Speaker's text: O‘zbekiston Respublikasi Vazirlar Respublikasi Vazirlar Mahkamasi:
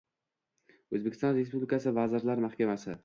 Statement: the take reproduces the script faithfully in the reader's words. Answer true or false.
false